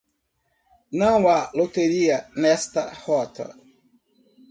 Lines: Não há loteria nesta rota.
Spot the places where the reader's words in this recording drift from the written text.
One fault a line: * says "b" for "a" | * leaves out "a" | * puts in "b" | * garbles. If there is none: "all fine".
all fine